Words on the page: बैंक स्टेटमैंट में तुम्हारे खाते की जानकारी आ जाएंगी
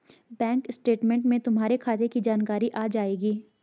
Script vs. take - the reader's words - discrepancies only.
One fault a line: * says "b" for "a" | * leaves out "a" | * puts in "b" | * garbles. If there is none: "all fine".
all fine